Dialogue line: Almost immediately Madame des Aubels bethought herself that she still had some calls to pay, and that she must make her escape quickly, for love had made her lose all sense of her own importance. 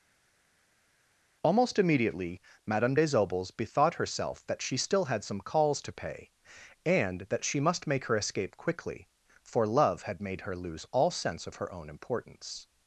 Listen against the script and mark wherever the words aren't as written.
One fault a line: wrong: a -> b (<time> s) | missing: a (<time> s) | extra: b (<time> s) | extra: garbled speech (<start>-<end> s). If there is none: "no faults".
no faults